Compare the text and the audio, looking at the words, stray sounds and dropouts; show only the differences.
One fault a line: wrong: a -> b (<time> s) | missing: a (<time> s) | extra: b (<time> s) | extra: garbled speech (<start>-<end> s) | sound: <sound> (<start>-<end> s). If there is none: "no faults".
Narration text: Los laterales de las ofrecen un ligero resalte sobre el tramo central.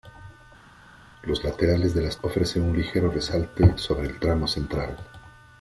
no faults